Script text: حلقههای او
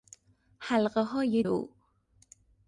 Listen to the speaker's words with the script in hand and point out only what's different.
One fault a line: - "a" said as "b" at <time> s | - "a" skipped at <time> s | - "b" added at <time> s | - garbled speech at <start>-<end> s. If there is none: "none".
none